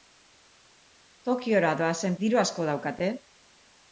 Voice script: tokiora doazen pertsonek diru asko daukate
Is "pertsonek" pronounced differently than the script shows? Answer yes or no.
yes